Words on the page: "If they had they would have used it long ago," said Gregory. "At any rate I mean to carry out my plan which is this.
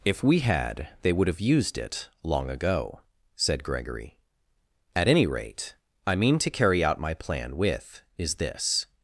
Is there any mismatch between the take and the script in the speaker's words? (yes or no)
yes